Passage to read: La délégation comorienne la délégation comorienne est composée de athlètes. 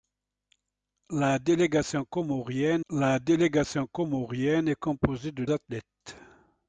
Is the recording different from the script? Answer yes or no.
no